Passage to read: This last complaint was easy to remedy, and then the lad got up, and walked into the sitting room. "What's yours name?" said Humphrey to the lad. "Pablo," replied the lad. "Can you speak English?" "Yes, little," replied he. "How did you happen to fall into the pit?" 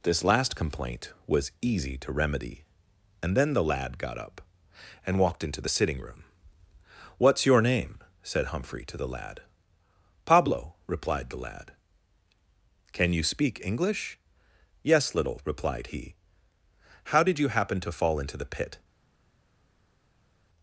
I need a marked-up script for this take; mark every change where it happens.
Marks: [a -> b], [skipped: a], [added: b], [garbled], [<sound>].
This last complaint was easy to remedy, and then the lad got up, and walked into the sitting room. "What's [yours -> your] name?" said Humphrey to the lad. "Pablo," replied the lad. "Can you speak English?" "Yes, little," replied he. "How did you happen to fall into the pit?"